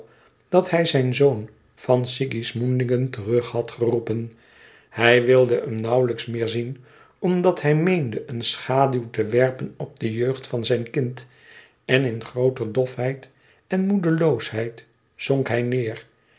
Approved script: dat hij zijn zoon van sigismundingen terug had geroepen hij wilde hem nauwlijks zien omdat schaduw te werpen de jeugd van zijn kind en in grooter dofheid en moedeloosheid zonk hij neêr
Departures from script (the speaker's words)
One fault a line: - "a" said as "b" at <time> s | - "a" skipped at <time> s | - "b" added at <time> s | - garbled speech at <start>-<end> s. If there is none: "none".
- "meer" added at 6.3 s
- "hij meende een" added at 7.6 s
- "op" added at 9.8 s